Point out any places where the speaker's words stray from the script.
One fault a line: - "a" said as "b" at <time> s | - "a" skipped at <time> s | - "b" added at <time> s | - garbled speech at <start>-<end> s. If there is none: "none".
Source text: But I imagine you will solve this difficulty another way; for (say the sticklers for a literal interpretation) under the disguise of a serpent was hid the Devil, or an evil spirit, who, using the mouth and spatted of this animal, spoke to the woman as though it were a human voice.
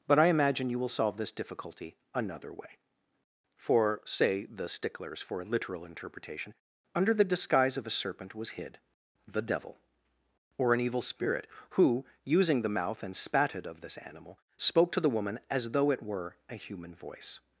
none